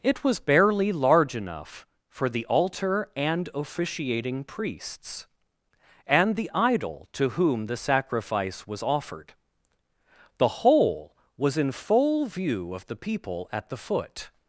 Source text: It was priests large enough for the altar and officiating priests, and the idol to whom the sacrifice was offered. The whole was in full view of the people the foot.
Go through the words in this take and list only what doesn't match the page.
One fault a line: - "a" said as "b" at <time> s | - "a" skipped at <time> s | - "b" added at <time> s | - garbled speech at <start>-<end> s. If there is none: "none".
- "priests" said as "barely" at 0.4 s
- "at" added at 13.5 s